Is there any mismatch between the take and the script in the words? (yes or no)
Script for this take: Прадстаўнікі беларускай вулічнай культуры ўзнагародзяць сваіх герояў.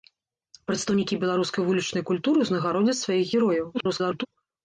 yes